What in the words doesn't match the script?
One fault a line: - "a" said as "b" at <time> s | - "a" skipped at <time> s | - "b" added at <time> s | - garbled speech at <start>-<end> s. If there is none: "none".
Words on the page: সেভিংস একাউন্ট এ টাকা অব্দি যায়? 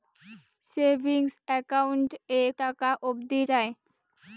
none